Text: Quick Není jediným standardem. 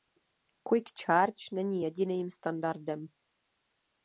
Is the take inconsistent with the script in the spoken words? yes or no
yes